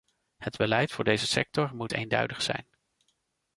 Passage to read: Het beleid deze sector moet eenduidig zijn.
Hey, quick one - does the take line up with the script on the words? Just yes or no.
no